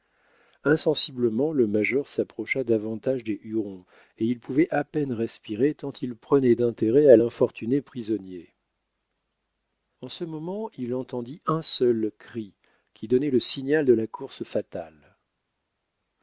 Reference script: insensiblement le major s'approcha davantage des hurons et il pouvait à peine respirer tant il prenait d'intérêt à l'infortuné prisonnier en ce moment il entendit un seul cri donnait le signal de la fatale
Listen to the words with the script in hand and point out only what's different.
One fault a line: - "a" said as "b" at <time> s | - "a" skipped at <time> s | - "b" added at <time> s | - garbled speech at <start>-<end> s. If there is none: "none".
- "qui" added at 12.9 s
- "course" added at 14.1 s